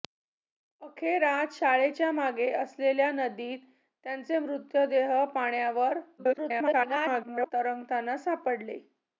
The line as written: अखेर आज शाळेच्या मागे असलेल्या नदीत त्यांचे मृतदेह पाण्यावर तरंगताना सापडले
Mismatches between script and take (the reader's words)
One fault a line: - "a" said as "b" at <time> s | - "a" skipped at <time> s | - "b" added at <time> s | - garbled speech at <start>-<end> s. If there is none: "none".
- garbled speech at 6.2-7.5 s